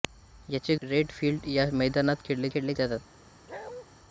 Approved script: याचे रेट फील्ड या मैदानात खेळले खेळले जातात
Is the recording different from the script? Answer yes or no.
no